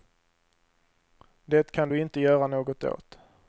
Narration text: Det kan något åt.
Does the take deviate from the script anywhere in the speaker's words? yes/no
yes